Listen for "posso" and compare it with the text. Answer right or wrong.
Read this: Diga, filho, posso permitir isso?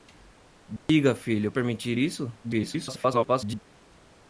wrong